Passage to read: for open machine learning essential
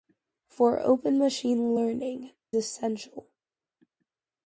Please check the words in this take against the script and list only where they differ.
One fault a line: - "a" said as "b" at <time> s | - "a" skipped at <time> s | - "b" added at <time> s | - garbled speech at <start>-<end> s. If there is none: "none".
none